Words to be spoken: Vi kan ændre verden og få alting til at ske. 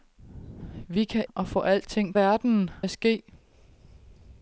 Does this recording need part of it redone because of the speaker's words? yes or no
yes